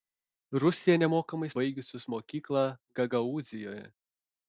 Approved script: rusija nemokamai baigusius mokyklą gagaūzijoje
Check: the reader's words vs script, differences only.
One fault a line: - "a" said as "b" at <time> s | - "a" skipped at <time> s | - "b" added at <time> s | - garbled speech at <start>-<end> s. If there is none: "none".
none